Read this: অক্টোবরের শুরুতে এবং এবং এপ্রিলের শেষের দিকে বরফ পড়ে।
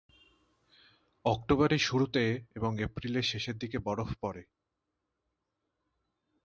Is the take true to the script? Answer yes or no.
no